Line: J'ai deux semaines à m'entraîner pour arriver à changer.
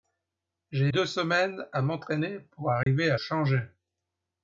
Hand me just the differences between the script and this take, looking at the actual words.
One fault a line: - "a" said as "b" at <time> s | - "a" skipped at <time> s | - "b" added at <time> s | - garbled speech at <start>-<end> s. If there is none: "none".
none